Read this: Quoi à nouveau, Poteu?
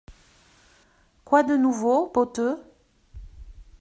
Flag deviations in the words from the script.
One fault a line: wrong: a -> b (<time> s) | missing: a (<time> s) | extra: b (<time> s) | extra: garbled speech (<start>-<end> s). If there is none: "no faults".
wrong: à -> de (1.4 s)